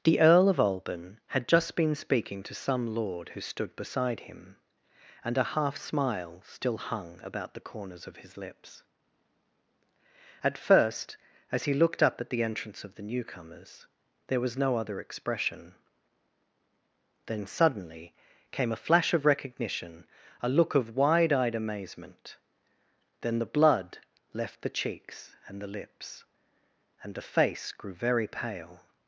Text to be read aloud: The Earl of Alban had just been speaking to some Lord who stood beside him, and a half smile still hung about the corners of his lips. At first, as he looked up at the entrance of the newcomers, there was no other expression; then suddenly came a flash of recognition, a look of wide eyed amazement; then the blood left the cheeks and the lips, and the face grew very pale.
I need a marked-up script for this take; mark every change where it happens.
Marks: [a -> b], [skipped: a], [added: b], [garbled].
The Earl of Alban had just been speaking to some Lord who stood beside him, and a half smile still hung about the corners of his lips. At first, as he looked up at the entrance of the newcomers, there was no other expression; then suddenly came a flash of recognition, a look of wide eyed amazement; then the blood left the cheeks and the lips, and the face grew very pale.